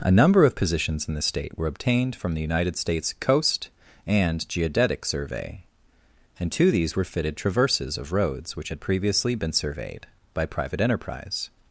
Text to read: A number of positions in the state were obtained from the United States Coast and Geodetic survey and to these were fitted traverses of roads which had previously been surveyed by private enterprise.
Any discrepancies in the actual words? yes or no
no